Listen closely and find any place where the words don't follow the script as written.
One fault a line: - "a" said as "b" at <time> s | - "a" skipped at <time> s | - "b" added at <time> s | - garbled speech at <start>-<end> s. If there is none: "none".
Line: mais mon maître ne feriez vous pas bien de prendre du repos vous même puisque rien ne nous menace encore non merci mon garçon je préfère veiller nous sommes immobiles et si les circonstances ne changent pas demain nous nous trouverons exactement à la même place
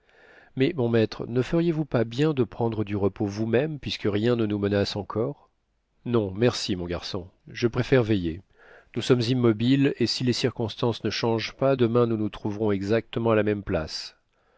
none